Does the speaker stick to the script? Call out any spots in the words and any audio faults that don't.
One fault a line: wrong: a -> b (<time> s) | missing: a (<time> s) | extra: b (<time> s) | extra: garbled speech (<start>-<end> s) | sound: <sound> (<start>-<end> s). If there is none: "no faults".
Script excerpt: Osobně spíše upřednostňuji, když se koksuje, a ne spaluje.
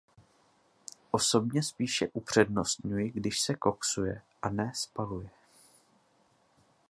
no faults